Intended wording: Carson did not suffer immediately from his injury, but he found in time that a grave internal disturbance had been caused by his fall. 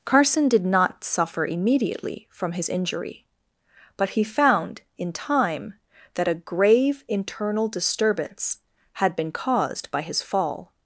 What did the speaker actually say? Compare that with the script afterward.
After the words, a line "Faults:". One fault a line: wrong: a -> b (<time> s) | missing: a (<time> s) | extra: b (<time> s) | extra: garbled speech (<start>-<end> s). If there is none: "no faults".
Carson did not suffer immediately from his injury, but he found in time that a grave internal disturbance had been caused by his fall.
Faults:
no faults